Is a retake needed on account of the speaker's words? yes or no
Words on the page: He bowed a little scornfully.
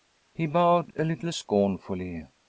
no